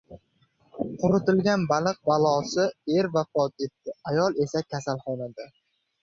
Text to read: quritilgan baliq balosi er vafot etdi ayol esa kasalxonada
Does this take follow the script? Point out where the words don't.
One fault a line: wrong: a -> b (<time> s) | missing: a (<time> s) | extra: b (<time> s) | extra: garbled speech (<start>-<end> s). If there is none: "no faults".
no faults